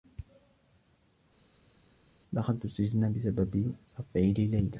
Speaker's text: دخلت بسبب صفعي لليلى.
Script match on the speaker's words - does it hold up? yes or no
no